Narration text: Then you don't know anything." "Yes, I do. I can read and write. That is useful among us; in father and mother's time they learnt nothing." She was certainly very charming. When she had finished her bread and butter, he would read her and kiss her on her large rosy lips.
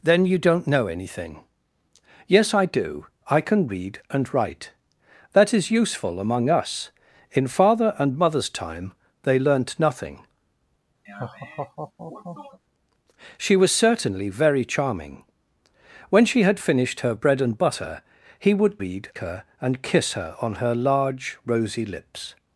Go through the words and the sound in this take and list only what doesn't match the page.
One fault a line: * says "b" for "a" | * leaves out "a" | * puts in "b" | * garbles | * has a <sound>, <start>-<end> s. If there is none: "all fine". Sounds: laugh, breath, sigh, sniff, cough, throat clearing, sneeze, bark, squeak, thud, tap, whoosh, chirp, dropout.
* has a laugh, 11.1-12.6 s